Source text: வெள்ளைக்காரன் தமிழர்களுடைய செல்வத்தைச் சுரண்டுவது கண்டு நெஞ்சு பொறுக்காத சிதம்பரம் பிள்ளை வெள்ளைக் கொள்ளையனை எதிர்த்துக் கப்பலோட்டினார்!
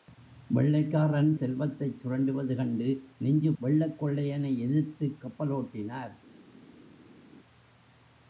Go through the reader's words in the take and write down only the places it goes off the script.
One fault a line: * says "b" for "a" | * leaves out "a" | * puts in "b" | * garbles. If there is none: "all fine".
* leaves out "தமிழர்களுடைய"
* leaves out "பொறுக்காத சிதம்பரம் பிள்ளை"